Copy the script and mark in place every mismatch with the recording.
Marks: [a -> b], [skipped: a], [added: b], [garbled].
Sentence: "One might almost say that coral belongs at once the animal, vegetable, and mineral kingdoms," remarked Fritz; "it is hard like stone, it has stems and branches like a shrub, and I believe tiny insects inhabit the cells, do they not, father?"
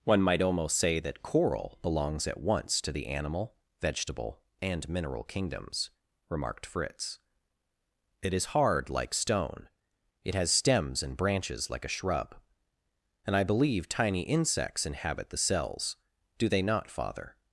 "One might almost say that coral belongs at once [added: to] the animal, vegetable, and mineral kingdoms," remarked Fritz; "it is hard like stone, it has stems and branches like a shrub, and I believe tiny insects inhabit the cells, do they not, father?"